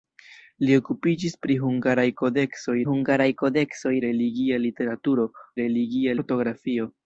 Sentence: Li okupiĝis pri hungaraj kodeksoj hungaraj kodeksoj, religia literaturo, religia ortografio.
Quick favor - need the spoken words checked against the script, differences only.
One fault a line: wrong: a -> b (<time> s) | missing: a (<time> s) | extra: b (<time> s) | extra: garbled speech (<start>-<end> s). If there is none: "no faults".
no faults